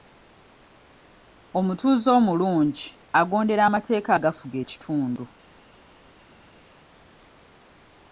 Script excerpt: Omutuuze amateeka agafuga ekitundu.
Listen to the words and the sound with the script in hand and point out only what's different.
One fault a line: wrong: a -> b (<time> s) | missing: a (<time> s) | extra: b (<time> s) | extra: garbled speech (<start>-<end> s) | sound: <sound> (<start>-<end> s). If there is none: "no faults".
extra: omulungi agondera (2.2 s)